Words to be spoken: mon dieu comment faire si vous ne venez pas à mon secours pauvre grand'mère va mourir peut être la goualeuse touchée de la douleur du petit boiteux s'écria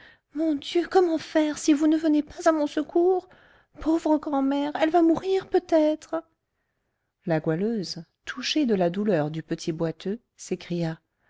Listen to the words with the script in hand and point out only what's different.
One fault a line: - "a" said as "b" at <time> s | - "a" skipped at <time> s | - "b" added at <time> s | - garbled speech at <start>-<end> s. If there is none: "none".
- "elle" added at 4.8 s